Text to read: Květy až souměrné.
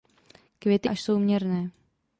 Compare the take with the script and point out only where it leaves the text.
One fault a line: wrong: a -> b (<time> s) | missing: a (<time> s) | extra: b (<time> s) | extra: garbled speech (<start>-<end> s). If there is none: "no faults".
no faults